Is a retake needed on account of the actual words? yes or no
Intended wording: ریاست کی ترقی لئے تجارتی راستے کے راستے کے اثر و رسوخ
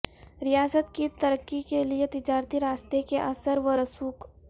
yes